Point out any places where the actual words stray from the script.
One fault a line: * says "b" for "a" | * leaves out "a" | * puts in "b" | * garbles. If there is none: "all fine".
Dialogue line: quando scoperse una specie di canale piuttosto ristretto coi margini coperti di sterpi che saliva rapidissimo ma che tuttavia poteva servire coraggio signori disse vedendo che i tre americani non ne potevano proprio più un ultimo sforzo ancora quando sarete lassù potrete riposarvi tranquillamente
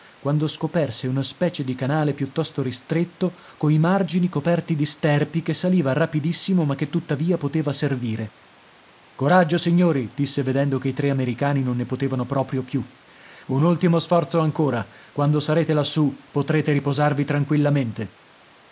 all fine